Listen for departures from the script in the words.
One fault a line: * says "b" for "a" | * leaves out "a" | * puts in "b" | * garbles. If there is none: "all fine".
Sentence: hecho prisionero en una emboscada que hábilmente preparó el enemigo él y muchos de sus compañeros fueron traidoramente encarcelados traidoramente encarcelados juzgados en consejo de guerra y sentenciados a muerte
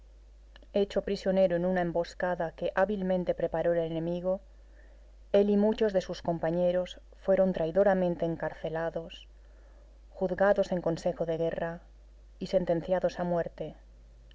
* leaves out "traidoramente encarcelados"